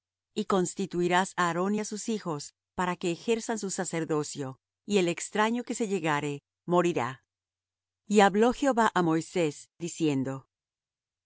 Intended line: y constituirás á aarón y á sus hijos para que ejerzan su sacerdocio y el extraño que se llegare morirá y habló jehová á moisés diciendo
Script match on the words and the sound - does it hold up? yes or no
yes